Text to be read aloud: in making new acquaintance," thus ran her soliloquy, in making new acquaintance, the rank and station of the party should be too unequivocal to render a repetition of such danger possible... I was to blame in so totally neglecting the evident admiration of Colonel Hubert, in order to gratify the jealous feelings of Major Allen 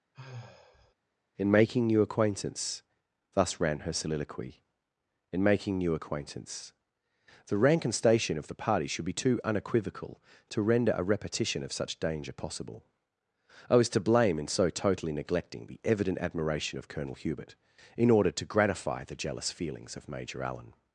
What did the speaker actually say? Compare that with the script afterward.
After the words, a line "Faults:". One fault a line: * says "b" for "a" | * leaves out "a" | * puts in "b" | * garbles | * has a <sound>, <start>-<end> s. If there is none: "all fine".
in making new acquaintance," thus ran her soliloquy, in making new acquaintance, the rank and station of the party should be too unequivocal to render a repetition of such danger possible... I was to blame in so totally neglecting the evident admiration of Colonel Hubert, in order to gratify the jealous feelings of Major Allen
Faults:
* has a sigh, 0.1-0.9 s